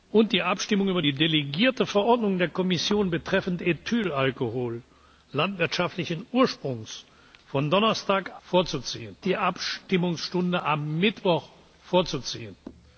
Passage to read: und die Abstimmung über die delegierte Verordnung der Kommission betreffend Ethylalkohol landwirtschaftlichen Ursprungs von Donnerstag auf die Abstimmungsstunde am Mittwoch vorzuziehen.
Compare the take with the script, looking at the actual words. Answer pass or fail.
fail